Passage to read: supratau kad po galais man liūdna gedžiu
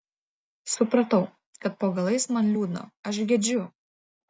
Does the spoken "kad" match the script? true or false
true